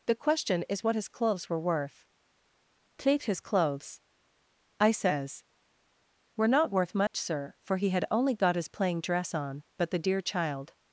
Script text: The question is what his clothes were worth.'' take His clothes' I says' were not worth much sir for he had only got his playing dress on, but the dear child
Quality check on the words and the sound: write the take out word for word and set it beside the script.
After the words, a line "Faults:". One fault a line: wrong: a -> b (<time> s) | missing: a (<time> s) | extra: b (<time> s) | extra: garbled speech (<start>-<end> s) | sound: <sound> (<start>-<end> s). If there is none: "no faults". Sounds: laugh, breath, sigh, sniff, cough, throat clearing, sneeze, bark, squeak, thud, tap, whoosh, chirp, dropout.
The question is what his clothes were worth.'' take His clothes' I says' were not worth much sir for he had only got his playing dress on, but the dear child
Faults:
sound: dropout (7.1-7.1 s)